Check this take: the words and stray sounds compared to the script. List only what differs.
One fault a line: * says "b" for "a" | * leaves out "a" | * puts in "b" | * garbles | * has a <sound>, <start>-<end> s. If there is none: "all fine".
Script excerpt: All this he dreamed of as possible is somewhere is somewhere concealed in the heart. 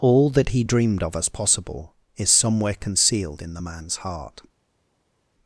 * says "that" for "this"
* leaves out "is somewhere"
* puts in "man's"